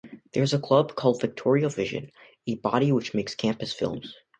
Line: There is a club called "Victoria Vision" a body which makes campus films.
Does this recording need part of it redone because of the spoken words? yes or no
no